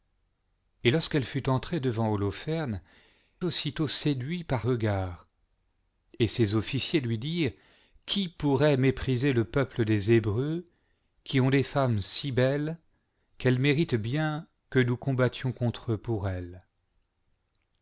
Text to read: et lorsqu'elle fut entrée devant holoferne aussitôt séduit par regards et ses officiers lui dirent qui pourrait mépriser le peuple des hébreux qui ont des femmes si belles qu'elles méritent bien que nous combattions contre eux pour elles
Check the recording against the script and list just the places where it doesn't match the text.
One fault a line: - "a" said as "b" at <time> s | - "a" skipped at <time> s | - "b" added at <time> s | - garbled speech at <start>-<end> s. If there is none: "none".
none